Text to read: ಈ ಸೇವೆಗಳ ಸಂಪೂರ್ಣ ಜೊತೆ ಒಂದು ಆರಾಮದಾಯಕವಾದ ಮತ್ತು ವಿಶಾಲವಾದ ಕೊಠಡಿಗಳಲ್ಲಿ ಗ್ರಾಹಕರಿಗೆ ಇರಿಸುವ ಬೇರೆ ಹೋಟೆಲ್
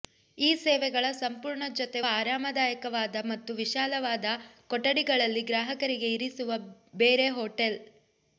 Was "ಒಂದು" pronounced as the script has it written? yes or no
no